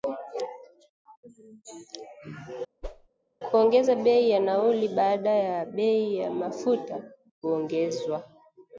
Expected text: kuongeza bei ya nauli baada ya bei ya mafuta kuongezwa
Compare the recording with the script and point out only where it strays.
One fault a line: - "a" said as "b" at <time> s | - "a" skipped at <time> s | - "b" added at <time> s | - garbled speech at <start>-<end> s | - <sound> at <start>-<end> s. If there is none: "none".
- whoosh at 2.8-3.1 s